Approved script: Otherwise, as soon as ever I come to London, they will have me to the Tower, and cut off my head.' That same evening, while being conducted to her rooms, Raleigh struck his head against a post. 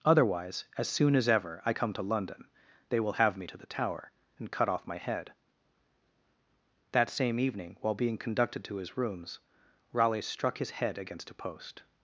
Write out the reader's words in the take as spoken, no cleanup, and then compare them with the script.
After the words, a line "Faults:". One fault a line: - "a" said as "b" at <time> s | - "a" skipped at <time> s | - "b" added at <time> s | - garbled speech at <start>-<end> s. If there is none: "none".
Otherwise, as soon as ever I come to London, they will have me to the Tower, and cut off my head.' That same evening, while being conducted to his rooms, Raleigh struck his head against a post.
Faults:
- "her" said as "his" at 8.8 s